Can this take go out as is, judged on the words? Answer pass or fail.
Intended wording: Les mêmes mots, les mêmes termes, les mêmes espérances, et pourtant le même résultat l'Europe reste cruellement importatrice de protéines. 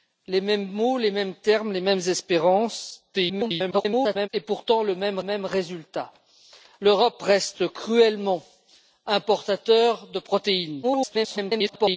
fail